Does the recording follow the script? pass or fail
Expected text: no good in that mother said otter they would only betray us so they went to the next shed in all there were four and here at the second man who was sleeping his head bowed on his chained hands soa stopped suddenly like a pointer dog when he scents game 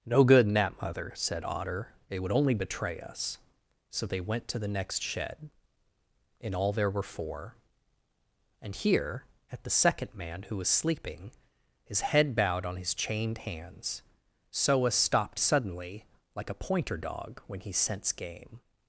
fail